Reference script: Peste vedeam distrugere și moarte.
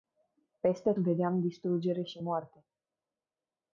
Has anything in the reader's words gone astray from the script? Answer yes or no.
no